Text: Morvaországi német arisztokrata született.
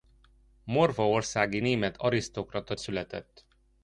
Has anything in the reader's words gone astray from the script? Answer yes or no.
no